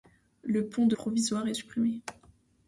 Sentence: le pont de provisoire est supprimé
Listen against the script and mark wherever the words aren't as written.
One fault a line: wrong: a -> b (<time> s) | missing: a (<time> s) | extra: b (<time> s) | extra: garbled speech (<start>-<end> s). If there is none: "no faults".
no faults